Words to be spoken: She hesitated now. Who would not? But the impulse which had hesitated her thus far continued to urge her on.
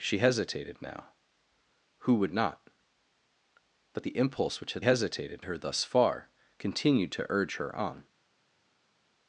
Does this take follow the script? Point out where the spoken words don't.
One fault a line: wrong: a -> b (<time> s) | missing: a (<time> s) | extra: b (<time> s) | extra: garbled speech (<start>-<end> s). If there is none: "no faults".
no faults